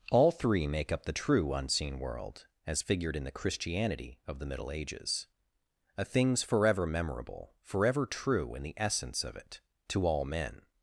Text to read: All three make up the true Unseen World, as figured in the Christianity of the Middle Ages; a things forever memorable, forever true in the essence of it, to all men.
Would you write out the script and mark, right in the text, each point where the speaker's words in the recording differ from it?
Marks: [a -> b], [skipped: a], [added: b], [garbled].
All three make up the true Unseen World, as figured in the Christianity of the Middle Ages; a things forever memorable, forever true in the essence of it, to all men.